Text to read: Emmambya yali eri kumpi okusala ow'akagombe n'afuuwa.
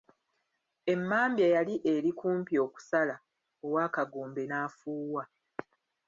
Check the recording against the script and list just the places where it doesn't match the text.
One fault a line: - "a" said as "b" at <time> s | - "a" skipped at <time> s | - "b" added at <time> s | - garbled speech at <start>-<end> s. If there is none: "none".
none